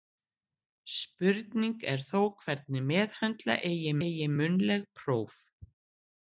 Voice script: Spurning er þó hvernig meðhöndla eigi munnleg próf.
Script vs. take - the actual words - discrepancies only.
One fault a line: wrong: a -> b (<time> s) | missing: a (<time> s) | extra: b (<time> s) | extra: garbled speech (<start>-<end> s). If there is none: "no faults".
extra: eigi (4.1 s)